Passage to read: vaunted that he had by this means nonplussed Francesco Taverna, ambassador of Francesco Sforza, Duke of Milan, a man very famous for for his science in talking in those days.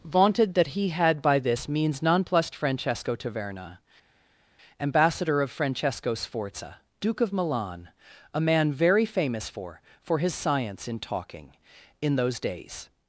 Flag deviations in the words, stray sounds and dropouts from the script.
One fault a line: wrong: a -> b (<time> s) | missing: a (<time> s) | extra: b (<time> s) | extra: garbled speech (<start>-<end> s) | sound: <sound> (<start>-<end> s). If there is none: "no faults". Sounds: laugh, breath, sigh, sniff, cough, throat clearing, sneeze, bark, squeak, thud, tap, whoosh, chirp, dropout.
no faults